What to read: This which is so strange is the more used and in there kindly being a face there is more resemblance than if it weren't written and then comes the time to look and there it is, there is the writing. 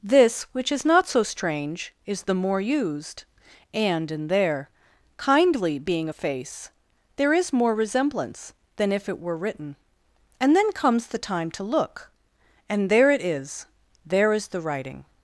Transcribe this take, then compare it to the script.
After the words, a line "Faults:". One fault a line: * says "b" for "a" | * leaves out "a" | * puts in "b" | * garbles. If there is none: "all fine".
This which is not so strange is the more used and in there kindly being a face there is more resemblance than if it were written and then comes the time to look and there it is, there is the writing.
Faults:
* puts in "not"
* says "were" for "weren't"